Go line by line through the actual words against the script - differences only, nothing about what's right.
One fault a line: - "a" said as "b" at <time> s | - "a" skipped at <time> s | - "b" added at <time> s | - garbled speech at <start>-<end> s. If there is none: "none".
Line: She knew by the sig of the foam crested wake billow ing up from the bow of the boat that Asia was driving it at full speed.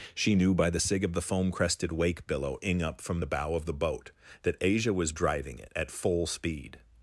none